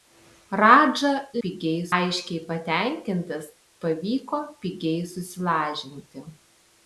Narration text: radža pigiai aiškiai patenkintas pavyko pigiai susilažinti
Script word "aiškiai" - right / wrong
right